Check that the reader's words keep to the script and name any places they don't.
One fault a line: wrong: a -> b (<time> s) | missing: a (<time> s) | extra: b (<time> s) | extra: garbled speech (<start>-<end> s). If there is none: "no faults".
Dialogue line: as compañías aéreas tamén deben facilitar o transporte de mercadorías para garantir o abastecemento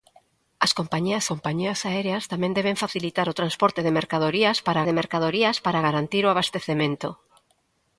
extra: compañías (1.3 s)
extra: de mercadorías para (4.8 s)